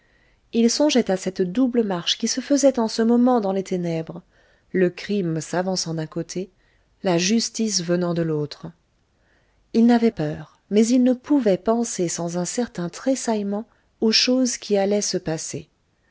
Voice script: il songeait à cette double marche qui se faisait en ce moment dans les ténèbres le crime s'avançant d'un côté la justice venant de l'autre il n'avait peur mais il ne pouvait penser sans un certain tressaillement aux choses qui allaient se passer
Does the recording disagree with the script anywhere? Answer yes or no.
no